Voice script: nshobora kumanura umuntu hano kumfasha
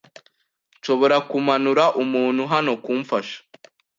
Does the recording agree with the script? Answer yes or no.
yes